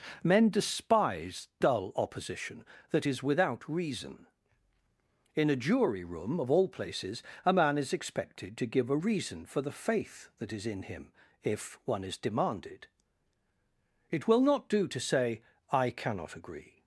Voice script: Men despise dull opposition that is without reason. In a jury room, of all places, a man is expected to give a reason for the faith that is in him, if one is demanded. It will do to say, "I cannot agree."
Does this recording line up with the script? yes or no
no